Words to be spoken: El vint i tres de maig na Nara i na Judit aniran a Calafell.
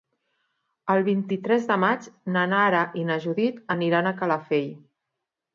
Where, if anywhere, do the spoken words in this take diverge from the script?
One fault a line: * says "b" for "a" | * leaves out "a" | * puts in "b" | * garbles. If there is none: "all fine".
all fine